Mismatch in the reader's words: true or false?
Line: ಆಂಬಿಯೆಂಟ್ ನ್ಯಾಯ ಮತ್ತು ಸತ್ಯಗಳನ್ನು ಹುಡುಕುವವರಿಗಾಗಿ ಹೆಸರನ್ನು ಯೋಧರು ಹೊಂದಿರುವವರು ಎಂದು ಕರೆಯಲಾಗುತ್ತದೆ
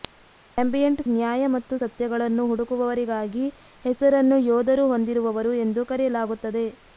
false